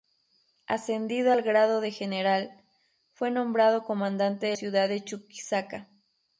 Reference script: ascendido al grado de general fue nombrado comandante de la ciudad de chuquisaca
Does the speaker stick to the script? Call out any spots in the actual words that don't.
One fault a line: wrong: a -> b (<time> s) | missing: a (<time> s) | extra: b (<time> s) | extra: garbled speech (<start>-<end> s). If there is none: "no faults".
missing: la (4.6 s)